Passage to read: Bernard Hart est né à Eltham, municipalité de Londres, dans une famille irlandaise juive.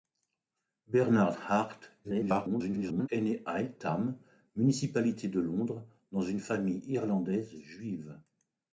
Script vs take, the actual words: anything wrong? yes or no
yes